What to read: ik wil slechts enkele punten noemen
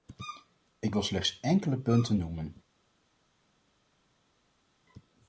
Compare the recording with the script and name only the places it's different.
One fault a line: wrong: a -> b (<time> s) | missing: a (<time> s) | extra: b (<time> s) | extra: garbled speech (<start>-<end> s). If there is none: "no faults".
no faults